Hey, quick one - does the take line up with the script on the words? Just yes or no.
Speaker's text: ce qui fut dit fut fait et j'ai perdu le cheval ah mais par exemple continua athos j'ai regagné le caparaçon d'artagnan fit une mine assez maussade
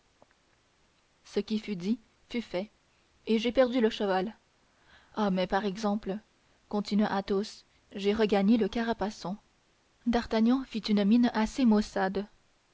yes